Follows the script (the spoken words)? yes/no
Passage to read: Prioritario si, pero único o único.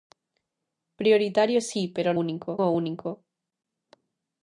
yes